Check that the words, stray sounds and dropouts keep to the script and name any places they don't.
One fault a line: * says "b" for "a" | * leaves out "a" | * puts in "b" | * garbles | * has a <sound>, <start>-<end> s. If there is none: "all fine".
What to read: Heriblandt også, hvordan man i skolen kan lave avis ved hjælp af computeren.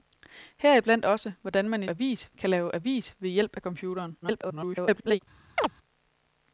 * says "avis" for "skolen"
* garbles
* has a chirp, 5.6-5.7 s